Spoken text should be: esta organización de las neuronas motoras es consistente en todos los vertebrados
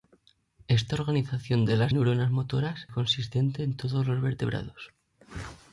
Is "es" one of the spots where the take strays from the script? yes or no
yes